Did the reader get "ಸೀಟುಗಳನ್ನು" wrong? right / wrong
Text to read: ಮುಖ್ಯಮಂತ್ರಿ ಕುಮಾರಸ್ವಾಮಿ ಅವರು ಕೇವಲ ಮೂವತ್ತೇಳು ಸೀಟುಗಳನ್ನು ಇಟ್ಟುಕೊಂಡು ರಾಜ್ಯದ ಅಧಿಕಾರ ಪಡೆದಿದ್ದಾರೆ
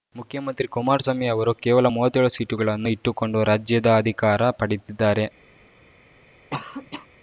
right